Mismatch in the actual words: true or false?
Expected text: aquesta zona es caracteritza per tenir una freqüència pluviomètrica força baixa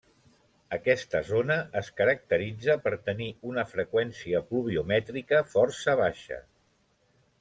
false